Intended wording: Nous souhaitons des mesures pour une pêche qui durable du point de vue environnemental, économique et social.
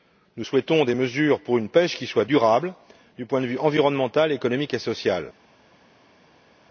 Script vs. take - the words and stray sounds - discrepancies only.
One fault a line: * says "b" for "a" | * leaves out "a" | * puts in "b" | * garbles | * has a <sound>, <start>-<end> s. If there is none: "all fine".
* puts in "soit"